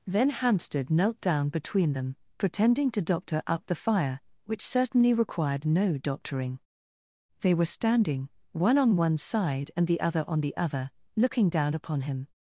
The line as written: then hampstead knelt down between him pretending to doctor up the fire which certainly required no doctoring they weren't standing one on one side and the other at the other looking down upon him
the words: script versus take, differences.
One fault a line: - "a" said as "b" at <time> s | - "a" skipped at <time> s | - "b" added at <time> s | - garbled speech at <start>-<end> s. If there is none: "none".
- "him" said as "them" at 1.9 s
- "weren't" said as "were" at 7.5 s
- "at" said as "on" at 10.3 s